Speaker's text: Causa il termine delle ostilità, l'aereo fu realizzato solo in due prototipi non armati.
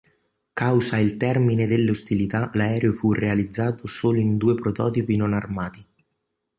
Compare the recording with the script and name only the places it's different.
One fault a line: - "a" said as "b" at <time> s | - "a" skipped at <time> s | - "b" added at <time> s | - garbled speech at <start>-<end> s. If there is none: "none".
none